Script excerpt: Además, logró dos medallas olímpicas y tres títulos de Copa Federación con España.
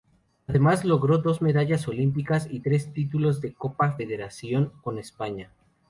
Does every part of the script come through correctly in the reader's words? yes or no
yes